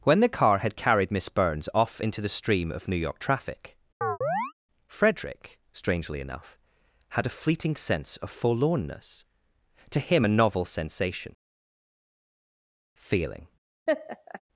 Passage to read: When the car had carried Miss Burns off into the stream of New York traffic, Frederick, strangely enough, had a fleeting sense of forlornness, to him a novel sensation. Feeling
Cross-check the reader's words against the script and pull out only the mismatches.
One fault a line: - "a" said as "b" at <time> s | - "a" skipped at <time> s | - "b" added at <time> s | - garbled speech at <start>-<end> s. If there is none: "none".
none